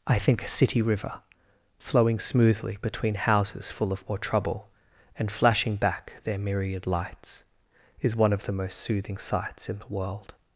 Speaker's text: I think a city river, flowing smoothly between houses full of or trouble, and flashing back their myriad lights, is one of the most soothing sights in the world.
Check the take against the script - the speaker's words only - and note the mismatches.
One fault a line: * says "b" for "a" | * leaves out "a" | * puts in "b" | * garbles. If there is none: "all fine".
all fine